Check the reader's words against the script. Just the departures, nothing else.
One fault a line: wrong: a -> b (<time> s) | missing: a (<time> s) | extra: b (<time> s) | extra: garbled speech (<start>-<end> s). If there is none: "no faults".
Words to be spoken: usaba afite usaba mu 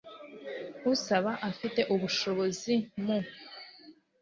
wrong: usaba -> ubushobozi (1.9 s)